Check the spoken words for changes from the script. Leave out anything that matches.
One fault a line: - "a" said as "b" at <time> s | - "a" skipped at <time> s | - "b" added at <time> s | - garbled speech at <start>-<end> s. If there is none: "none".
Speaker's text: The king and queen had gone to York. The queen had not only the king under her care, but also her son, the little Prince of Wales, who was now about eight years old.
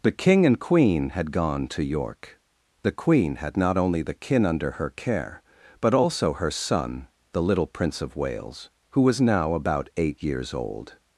- "king" said as "kin" at 4.1 s